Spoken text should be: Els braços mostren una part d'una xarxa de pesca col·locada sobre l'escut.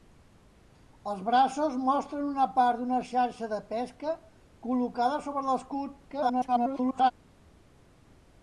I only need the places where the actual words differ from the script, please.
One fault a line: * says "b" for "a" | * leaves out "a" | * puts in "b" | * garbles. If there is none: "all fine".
* garbles